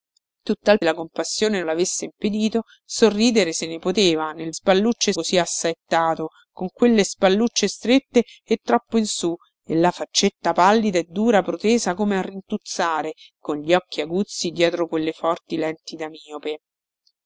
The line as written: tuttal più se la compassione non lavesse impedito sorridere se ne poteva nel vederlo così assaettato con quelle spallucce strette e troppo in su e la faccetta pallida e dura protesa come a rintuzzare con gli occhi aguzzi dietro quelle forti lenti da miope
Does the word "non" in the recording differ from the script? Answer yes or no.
yes